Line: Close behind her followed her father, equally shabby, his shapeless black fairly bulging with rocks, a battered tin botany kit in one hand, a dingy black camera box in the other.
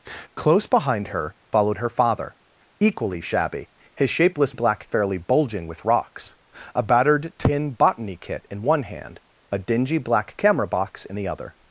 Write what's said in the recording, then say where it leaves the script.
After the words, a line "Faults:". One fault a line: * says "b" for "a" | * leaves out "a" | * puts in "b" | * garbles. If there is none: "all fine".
Close behind her followed her father, equally shabby, his shapeless black fairly bulging with rocks, a battered tin botany kit in one hand, a dingy black camera box in the other.
Faults:
all fine